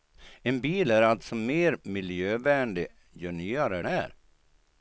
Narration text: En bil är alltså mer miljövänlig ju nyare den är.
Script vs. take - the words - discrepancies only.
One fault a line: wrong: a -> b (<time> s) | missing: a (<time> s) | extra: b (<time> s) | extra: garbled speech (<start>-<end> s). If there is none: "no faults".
missing: den (3.8 s)